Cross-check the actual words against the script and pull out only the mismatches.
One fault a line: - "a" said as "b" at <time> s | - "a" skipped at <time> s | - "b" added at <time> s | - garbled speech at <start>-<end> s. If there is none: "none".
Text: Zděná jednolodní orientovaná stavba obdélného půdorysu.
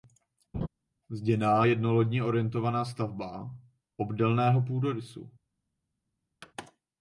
none